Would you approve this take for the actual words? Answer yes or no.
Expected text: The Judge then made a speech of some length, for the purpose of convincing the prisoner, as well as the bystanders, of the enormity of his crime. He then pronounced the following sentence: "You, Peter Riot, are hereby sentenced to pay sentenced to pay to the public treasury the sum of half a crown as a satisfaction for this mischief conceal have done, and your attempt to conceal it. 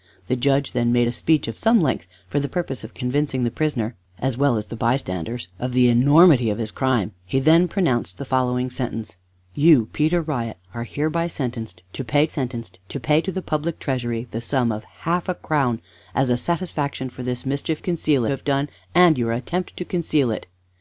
yes